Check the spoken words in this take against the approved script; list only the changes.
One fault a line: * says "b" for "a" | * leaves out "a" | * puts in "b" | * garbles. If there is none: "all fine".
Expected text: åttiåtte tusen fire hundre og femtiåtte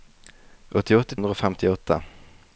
* leaves out "tusen fire"